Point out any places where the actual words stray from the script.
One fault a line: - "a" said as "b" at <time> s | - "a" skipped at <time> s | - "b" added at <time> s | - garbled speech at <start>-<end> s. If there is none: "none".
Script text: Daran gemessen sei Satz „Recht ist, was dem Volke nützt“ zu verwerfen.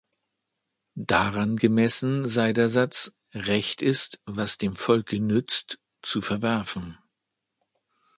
- "der" added at 2.5 s